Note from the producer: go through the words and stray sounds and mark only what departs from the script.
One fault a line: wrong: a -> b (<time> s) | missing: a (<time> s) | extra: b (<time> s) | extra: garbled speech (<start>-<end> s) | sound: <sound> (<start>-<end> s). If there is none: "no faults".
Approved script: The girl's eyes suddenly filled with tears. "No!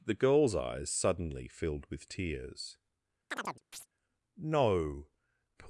sound: chirp (3.3-3.9 s)